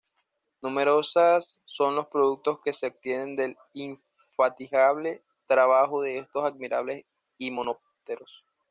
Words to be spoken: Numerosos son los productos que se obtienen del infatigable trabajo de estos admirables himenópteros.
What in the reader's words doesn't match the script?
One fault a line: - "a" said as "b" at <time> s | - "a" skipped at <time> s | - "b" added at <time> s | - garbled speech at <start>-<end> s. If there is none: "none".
none